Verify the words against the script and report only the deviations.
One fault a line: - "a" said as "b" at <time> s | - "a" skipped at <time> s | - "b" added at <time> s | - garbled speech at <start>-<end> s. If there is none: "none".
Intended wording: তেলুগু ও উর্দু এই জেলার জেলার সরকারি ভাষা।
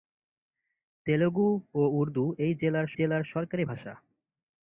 none